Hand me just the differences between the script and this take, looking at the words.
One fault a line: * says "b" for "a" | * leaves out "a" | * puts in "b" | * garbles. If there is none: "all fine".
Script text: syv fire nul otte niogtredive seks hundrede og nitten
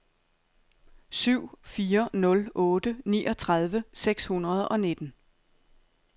all fine